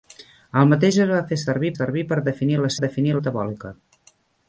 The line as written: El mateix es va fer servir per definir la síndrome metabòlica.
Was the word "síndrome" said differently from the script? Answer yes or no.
yes